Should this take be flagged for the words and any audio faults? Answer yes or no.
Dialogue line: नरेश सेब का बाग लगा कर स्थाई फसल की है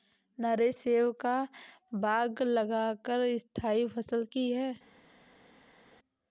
no